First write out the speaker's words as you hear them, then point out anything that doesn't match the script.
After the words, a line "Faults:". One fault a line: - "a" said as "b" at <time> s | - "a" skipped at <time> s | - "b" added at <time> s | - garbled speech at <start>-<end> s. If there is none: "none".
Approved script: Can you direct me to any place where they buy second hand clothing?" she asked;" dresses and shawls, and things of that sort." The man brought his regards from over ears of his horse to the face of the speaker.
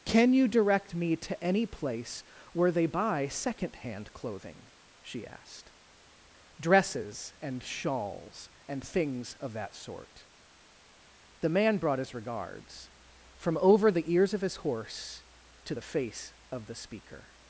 Can you direct me to any place where they buy second hand clothing?" she asked;" dresses and shawls, and things of that sort." The man brought his regards from over the ears of his horse to the face of the speaker.
Faults:
- "the" added at 13.9 s